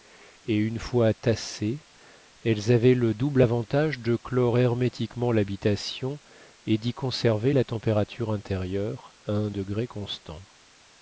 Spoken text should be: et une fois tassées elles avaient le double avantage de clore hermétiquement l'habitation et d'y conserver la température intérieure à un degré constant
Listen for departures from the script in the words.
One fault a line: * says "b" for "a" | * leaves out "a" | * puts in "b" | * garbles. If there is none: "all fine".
all fine